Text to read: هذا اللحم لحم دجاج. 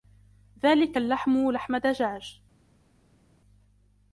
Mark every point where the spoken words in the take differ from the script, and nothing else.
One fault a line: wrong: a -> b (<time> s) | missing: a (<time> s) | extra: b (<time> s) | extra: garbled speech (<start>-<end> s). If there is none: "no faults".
wrong: هذا -> ذلك (0.6 s)